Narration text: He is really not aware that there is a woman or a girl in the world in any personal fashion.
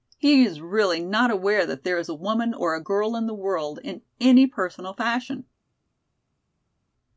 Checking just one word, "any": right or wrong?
right